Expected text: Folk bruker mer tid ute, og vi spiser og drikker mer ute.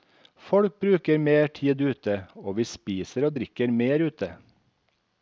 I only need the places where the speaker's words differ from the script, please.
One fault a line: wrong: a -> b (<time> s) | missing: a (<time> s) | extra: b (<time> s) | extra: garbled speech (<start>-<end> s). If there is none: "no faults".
no faults